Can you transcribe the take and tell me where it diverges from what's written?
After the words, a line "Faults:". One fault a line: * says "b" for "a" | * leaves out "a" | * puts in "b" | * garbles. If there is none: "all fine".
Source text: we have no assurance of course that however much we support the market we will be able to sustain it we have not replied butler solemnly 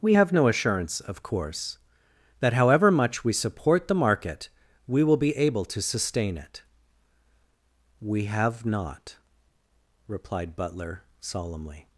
we have no assurance of course that however much we support the market we will be able to sustain it we have not replied butler solemnly
Faults:
all fine